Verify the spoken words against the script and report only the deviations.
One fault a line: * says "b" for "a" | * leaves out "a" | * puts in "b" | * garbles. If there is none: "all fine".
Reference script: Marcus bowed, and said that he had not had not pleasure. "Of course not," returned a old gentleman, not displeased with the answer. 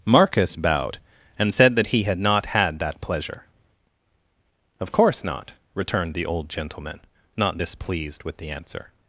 * says "that" for "not"
* says "the" for "a"